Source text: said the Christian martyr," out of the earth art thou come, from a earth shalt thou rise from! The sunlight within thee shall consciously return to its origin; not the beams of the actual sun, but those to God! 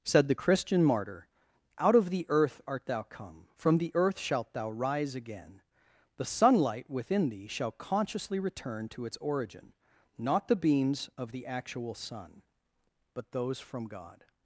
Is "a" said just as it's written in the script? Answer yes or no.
no